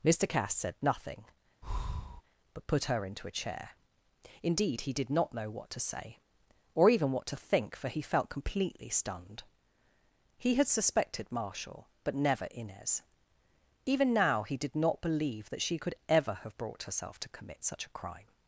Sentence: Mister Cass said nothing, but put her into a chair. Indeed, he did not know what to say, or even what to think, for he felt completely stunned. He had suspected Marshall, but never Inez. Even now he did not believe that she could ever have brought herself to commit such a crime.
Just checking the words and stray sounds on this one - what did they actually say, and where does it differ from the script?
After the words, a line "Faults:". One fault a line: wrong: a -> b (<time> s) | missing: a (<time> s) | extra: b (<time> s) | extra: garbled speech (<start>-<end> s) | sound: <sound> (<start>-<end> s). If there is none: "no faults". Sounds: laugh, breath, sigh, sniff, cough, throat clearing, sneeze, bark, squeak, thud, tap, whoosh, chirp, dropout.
Mister Cass said nothing, but put her into a chair. Indeed, he did not know what to say, or even what to think, for he felt completely stunned. He had suspected Marshall, but never Inez. Even now he did not believe that she could ever have brought herself to commit such a crime.
Faults:
sound: breath (1.6-2.2 s)